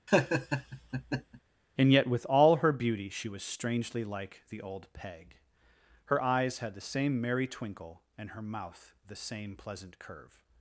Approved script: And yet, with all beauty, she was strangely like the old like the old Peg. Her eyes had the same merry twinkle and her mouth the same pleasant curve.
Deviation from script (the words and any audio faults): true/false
true